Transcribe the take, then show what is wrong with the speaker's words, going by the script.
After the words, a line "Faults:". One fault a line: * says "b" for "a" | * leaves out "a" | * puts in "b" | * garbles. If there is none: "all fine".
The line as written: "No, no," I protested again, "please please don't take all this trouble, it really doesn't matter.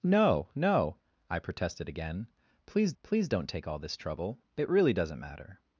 "No, no," I protested again, "please please don't take all this trouble, it really doesn't matter.
Faults:
all fine